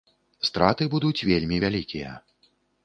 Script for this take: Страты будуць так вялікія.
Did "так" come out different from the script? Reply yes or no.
yes